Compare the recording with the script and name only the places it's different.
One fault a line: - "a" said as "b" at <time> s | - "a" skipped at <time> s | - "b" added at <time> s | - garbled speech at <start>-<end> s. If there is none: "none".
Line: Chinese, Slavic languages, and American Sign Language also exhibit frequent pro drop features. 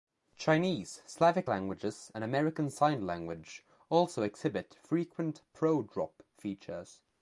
none